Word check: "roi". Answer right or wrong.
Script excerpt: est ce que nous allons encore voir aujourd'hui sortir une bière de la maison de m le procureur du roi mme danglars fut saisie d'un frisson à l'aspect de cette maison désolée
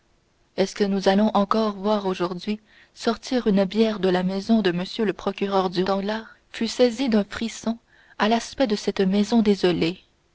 wrong